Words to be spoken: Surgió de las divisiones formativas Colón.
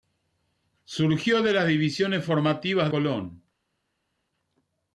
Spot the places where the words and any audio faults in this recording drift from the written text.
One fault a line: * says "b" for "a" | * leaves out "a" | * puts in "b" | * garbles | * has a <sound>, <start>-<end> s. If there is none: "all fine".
all fine